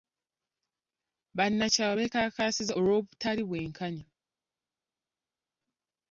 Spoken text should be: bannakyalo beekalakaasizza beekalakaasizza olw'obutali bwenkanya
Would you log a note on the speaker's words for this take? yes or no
yes